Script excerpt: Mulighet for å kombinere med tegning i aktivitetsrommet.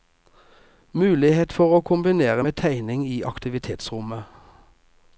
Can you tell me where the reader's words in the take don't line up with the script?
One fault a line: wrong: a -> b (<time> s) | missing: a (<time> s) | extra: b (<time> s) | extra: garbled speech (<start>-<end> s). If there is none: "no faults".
no faults